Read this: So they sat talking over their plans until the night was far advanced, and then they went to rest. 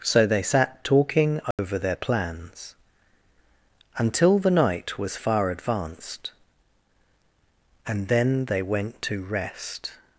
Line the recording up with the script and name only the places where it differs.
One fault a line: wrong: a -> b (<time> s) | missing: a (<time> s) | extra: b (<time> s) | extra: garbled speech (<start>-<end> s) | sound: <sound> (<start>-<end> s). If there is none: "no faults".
sound: dropout (1.5-1.6 s)